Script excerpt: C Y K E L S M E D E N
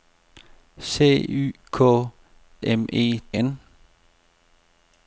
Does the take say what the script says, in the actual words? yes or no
no